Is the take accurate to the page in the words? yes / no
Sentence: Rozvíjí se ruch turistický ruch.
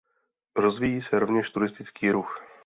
no